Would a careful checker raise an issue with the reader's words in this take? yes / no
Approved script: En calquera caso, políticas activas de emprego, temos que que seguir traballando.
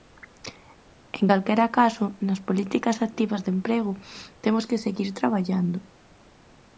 yes